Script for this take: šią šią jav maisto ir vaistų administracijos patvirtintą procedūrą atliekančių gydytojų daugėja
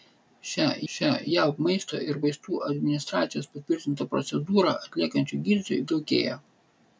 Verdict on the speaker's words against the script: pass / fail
pass